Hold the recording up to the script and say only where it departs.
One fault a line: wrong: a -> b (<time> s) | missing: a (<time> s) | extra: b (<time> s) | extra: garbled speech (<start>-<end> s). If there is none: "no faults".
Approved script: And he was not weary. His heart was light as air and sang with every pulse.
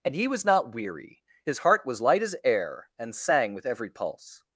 no faults